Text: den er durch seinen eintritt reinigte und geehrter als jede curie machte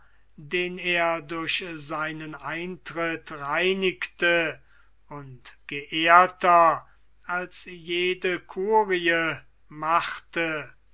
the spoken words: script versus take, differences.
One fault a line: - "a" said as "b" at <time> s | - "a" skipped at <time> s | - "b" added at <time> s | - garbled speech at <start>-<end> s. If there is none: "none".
none